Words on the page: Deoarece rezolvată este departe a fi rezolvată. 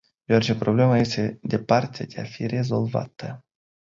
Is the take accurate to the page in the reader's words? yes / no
no